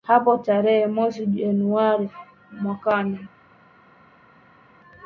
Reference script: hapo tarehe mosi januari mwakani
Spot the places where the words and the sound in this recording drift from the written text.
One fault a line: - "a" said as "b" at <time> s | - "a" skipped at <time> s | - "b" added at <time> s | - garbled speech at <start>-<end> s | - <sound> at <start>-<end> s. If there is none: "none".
none